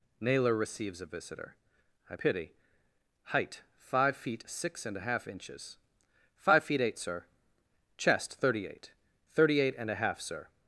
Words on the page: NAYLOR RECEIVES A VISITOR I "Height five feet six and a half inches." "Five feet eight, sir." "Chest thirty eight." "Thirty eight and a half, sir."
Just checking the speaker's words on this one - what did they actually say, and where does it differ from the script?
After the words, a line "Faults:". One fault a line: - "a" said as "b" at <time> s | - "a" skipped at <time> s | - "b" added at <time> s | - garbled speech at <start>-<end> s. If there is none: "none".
NAYLOR RECEIVES A VISITOR I pity "Height five feet six and a half inches." "Five feet eight, sir." "Chest thirty eight." "Thirty eight and a half, sir."
Faults:
- "pity" added at 2.1 s